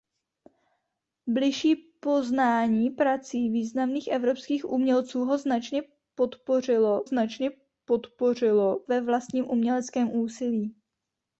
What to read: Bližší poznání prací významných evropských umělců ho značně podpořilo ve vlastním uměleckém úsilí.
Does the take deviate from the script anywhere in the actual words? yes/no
yes